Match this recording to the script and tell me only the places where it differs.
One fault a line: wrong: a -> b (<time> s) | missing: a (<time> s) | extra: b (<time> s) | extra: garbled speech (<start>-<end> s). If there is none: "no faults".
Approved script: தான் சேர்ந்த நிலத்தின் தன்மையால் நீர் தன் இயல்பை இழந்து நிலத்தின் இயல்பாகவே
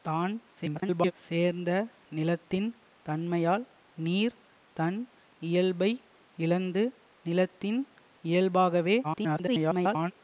extra: garbled speech (0.6-1.1 s)
extra: garbled speech (9.0-10.1 s)